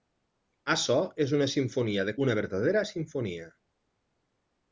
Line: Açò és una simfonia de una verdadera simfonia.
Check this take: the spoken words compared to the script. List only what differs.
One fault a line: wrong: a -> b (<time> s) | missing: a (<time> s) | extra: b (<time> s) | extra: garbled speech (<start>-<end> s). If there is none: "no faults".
no faults